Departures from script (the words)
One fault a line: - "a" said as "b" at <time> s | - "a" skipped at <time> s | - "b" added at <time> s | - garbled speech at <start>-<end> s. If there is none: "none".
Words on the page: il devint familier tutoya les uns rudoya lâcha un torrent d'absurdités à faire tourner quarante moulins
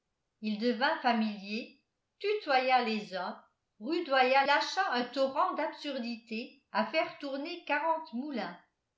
none